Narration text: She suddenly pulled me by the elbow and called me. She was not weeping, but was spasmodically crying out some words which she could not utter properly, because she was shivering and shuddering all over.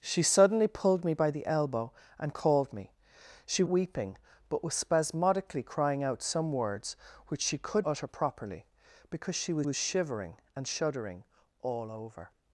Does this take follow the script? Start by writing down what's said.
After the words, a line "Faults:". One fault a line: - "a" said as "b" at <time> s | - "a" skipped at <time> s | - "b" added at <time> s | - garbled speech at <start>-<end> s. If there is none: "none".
She suddenly pulled me by the elbow and called me. She weeping, but was spasmodically crying out some words which she could utter properly, because she was was shivering and shuddering all over.
Faults:
- "was not" skipped at 3.6 s
- "not" skipped at 7.9 s
- "was" added at 9.6 s